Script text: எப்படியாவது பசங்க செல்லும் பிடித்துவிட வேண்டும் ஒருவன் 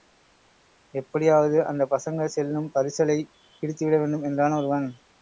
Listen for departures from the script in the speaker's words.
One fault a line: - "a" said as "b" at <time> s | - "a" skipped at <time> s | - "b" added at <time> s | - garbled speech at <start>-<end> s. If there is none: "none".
- "அந்தப்" added at 1.6 s
- "பரிசலைப்" added at 2.7 s
- "என்றான்" added at 4.2 s